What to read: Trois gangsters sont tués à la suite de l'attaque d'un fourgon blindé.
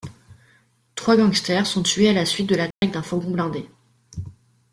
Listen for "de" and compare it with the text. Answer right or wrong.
right